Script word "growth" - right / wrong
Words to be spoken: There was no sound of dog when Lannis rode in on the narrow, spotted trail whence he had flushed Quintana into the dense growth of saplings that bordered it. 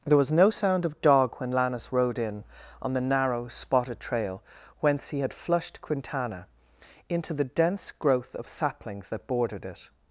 right